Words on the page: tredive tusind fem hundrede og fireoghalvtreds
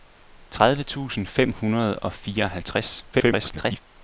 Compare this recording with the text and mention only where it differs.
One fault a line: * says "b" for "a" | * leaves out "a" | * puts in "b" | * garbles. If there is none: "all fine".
* garbles